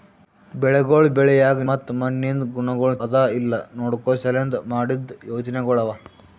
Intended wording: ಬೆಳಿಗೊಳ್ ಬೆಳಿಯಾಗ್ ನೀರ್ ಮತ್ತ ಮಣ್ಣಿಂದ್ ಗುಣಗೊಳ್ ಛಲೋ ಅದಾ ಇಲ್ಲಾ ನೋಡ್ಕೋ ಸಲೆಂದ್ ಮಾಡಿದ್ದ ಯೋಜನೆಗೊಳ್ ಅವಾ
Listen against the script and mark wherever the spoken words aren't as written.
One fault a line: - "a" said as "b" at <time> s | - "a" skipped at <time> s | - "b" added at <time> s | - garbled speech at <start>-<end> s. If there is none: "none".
- "ನೀರ್" skipped at 1.6 s
- "ಛಲೋ" skipped at 3.0 s